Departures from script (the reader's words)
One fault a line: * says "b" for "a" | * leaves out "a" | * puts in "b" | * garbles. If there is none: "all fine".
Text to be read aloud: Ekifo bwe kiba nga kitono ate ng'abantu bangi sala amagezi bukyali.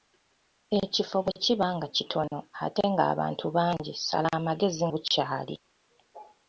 all fine